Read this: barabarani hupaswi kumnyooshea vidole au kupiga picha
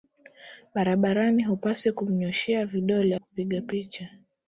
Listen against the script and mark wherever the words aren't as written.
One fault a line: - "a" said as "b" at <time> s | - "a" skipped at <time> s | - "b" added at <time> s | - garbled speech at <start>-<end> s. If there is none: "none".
- "au" skipped at 3.1 s